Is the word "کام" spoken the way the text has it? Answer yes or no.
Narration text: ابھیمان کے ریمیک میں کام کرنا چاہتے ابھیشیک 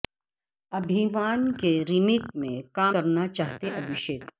yes